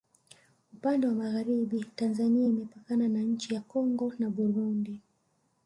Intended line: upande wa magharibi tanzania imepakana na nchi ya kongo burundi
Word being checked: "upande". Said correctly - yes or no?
yes